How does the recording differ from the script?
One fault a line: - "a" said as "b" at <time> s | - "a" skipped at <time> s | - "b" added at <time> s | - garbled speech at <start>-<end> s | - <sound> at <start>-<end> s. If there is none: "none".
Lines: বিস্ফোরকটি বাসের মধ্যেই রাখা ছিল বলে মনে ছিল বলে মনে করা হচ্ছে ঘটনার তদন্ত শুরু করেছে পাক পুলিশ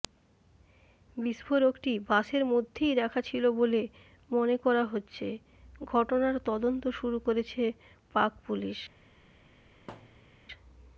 - "ছিল বলে মনে" skipped at 4.5 s
- thud at 9.9-10.4 s